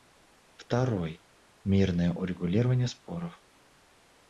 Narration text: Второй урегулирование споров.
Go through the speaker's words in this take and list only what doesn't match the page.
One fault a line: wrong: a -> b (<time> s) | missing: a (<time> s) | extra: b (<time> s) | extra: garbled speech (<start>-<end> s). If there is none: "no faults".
extra: мирное (1.6 s)